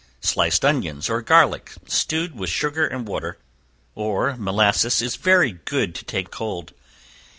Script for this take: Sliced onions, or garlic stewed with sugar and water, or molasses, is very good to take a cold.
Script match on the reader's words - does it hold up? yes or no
yes